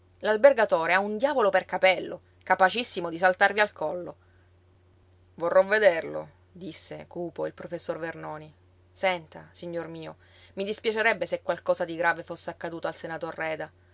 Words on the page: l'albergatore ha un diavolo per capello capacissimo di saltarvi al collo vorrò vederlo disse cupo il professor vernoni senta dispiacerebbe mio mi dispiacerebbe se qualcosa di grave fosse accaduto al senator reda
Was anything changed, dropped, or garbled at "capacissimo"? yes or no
no